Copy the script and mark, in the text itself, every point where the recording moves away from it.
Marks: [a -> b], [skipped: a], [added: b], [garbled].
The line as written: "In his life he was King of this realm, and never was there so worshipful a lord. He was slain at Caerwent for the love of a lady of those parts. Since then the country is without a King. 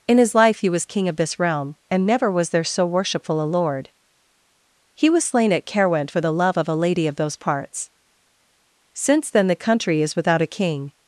"In his life he was King of this realm, and never was there so worshipful a lord. He was slain at Caerwent for the love of a lady of those parts. Since then the country is without a King.